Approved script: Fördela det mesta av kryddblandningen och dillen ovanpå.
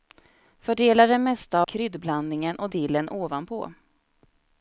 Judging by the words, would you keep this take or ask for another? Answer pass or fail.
fail